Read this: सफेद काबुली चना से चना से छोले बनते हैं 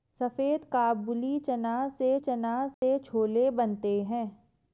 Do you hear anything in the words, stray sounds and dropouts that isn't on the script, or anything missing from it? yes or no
yes